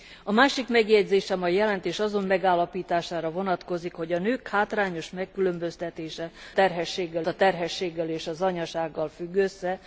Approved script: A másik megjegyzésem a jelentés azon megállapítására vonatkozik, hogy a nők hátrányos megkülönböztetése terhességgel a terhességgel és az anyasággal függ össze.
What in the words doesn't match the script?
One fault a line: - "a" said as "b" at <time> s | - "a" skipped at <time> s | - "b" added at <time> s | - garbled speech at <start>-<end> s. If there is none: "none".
none